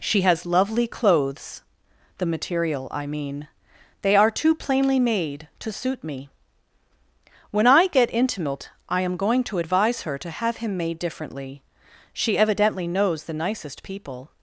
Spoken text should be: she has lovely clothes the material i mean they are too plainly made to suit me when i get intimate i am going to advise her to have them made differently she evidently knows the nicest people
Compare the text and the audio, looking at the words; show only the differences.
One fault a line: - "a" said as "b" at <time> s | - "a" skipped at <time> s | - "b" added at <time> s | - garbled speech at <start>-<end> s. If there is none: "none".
- "them" said as "him" at 10.6 s